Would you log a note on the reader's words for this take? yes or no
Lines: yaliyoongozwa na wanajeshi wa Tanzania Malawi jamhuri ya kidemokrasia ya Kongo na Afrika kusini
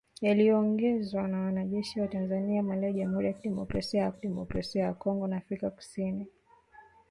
yes